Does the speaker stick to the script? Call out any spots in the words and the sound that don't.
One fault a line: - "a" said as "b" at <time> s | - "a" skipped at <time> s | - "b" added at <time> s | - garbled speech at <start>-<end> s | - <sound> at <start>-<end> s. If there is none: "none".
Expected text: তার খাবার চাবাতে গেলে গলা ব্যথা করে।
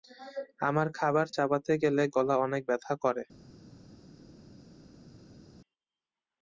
- "তার" said as "আমার" at 0.6 s
- "অনেক" added at 2.4 s